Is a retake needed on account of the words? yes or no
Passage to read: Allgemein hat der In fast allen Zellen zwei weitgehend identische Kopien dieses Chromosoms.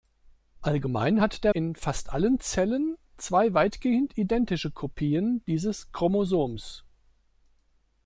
no